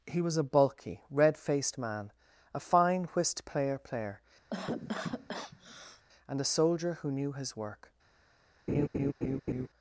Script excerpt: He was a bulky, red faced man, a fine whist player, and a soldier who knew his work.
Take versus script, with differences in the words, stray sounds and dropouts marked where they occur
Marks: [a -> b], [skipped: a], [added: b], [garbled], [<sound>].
He was a bulky, red faced man, a fine whist player, [added: player] [cough] and a soldier who knew his work. [laugh]